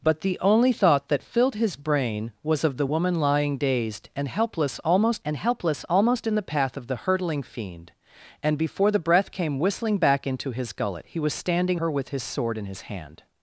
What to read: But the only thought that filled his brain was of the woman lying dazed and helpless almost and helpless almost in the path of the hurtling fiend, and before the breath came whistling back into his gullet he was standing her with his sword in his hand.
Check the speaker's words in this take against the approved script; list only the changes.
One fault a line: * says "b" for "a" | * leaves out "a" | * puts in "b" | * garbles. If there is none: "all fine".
all fine